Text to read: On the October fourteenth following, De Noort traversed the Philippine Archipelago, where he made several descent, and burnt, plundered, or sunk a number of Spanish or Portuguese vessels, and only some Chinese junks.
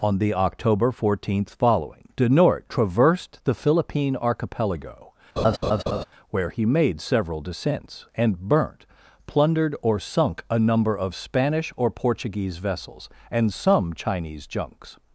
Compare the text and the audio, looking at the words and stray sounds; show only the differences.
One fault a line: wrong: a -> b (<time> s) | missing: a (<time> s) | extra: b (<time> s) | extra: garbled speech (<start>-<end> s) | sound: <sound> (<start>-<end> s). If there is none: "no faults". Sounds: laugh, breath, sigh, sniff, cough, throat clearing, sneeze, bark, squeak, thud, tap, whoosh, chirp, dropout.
sound: laugh (5.4-6.0 s)
wrong: descent -> descents (7.4 s)
missing: only (13.5 s)